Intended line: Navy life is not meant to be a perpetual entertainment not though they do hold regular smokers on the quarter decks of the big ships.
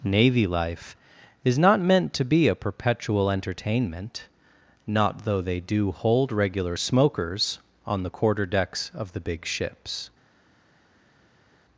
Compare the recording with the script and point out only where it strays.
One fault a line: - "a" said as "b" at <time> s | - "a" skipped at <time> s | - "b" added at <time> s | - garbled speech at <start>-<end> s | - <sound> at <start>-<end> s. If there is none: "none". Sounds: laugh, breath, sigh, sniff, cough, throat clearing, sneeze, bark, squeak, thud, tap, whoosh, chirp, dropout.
none